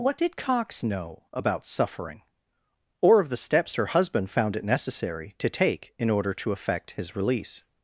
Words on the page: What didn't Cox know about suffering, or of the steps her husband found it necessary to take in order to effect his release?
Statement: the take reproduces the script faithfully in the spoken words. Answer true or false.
false